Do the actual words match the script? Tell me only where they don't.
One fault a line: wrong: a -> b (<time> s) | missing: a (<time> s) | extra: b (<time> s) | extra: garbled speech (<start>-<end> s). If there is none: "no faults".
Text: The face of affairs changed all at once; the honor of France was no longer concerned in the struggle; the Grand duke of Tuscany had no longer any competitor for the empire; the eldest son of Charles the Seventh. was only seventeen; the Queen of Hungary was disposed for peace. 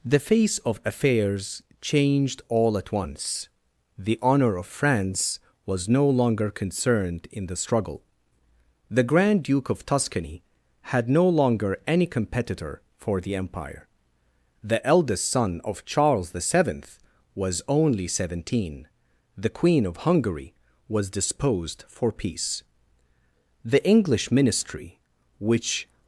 extra: The English ministry which (23.7 s)